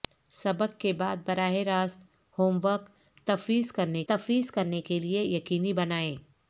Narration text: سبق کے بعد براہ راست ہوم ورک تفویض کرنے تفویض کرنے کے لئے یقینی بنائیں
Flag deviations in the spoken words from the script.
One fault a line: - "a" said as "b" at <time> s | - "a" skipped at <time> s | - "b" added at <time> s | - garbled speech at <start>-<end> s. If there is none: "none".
none